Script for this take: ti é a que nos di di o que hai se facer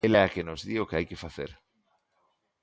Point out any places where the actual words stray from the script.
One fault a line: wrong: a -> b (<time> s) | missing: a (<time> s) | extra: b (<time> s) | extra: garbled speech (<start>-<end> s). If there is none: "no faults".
wrong: ti -> ela (0.1 s)
missing: di (0.8 s)
wrong: se -> que (1.1 s)